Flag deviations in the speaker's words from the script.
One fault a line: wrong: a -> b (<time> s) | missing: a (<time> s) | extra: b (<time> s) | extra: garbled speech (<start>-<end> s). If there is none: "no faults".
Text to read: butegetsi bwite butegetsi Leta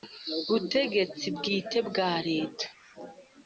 wrong: butegetsi -> bwa (1.9 s)